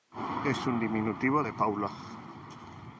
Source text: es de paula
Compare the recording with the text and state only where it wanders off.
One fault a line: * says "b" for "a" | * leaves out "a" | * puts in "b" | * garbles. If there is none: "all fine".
* puts in "un diminutivo"